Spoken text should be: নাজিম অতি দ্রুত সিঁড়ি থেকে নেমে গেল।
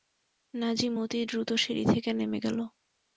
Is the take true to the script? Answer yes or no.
yes